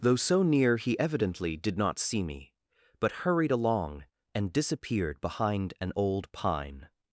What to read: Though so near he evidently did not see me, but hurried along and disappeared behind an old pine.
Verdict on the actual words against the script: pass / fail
pass